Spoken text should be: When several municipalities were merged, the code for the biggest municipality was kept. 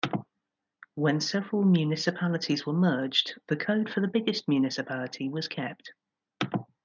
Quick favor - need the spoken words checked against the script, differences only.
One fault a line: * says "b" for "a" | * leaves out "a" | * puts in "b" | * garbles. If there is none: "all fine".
all fine